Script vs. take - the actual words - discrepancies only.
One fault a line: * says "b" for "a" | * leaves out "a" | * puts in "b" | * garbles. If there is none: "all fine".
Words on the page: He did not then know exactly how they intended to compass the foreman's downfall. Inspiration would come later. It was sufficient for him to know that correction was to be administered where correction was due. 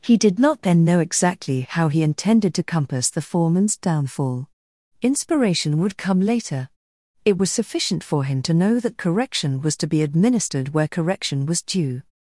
* says "he" for "they"